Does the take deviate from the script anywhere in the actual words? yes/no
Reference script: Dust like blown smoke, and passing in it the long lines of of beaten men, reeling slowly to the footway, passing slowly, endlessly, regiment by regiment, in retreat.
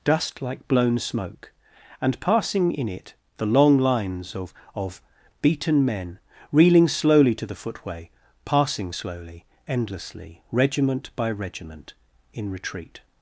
no